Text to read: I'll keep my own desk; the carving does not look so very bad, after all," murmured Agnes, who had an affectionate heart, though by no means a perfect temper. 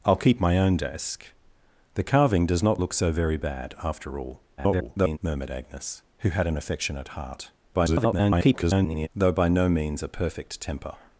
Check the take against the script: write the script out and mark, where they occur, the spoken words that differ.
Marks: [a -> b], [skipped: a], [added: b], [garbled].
I'll keep my own desk; the carving does not look so very bad, after all," [garbled] murmured Agnes, who had an affectionate heart, [garbled] though by no means a perfect temper.